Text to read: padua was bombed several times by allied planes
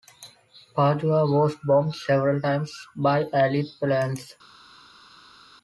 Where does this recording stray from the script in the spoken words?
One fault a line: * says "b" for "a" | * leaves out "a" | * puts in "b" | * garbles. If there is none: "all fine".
all fine